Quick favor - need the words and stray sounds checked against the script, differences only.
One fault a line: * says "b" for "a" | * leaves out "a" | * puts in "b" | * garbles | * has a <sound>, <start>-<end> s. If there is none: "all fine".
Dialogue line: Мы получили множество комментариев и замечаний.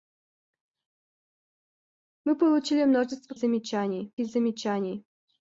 * says "замечаний" for "комментариев"